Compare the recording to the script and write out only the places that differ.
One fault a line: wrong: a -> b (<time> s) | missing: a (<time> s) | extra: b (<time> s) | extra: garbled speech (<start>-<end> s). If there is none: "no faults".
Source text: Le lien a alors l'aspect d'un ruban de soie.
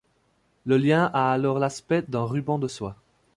no faults